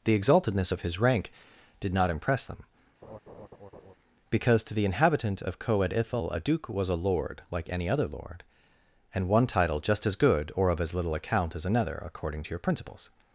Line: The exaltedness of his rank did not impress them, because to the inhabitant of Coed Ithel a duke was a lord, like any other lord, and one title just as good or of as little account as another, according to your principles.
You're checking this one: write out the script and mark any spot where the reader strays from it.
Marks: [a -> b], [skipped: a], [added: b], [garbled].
The exaltedness of his rank did not impress them, because to the inhabitant of Coed Ithel a duke was a lord, like any other lord, and one title just as good or of as little account as another, according to your principles.